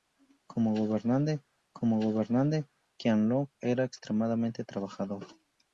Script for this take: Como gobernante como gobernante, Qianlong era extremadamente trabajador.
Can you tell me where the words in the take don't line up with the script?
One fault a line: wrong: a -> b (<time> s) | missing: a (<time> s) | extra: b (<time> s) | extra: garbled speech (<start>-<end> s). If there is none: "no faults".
no faults